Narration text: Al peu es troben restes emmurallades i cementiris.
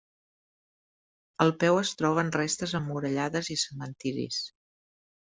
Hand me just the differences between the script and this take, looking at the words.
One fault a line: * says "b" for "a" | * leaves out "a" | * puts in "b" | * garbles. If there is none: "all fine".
all fine